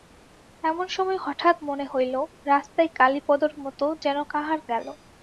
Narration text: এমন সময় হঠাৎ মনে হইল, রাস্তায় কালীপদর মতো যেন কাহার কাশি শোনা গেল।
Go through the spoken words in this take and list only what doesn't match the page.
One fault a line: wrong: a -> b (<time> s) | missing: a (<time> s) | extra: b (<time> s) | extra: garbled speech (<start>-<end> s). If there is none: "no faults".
missing: কাশি শোনা (4.6 s)